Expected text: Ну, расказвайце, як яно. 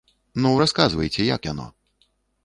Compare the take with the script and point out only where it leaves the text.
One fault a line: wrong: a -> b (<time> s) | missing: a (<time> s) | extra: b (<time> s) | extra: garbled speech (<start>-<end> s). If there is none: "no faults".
no faults